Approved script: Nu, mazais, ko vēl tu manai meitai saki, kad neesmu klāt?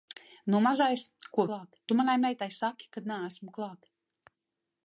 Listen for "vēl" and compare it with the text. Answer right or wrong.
wrong